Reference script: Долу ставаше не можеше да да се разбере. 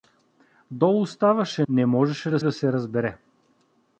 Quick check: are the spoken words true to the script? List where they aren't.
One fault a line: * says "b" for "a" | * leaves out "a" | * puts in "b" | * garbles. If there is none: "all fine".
all fine